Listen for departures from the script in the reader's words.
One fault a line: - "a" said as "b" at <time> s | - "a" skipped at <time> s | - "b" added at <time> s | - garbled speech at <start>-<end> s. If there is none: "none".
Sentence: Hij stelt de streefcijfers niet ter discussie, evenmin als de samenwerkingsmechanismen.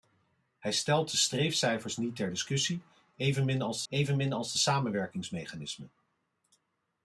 - "evenmin als" added at 3.9 s